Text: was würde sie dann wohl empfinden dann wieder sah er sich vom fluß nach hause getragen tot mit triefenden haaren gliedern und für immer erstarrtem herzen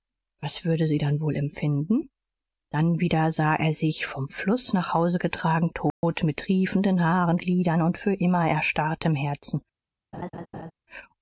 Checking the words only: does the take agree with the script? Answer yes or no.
yes